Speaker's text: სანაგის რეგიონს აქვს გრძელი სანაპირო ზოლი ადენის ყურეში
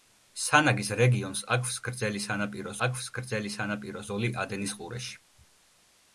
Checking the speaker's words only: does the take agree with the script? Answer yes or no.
no